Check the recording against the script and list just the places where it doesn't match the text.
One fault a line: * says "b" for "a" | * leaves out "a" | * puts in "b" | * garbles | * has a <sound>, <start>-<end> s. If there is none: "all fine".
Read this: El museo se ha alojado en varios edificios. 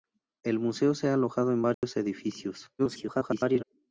* has a dropout, 1.7-1.8 s
* garbles